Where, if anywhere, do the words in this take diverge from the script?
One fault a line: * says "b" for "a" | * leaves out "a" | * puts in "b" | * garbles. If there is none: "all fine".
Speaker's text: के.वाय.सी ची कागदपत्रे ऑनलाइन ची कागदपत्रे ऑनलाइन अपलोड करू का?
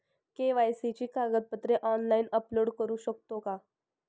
* leaves out "ची कागदपत्रे ऑनलाइन"
* puts in "शकतो"